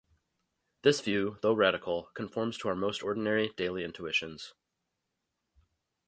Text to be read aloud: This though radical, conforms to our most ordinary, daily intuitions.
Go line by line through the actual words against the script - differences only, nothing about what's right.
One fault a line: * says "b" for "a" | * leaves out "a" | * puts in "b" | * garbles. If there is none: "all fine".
* puts in "view"